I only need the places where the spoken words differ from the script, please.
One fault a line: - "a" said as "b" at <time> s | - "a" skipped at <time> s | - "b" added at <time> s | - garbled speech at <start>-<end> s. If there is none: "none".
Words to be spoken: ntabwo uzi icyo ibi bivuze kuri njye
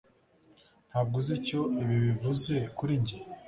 none